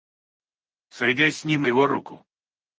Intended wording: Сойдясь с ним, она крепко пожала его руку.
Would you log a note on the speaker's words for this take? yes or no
yes